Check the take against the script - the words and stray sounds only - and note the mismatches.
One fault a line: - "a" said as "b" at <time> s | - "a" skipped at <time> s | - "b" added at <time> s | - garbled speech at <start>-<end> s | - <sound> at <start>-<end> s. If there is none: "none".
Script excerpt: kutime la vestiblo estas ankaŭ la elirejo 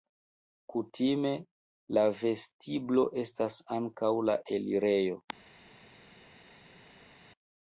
none